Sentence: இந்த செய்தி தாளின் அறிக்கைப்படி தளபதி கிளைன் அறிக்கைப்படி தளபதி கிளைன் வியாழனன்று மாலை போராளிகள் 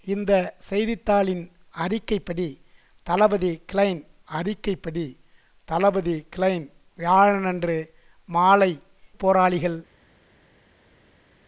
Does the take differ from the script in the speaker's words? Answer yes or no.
no